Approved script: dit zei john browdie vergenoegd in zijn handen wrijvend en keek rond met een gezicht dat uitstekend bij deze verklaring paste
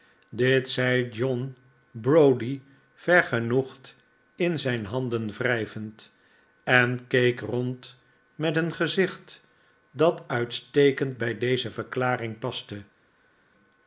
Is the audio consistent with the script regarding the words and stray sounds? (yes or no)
yes